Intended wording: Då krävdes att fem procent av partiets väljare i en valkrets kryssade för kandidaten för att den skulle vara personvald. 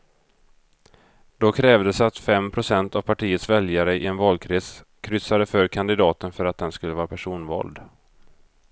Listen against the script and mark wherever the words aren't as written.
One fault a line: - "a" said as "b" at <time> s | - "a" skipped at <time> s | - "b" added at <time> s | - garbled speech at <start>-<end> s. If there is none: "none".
none